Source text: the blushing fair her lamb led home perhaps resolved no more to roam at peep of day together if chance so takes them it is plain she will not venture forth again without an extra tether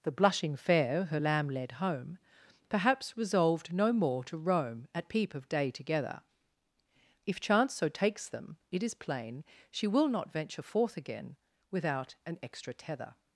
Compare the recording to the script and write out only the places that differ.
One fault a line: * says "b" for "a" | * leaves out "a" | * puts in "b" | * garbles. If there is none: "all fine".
all fine